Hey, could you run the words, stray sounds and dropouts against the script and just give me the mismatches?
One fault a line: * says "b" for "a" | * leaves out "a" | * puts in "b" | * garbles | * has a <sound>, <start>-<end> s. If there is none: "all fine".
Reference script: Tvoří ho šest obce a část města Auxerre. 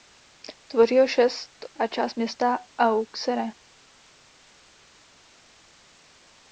* leaves out "obce"